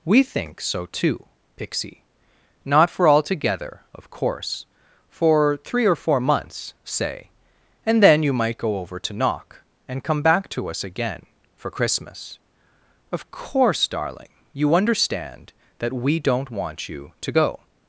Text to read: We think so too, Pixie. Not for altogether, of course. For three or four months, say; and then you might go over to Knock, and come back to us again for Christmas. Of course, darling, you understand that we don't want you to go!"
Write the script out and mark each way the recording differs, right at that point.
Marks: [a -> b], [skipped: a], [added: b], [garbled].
We think so too, Pixie. Not for altogether, of course. For three or four months, say; and then you might go over to Knock, and come back to us again for Christmas. Of course, darling, you understand that we don't want you to go!"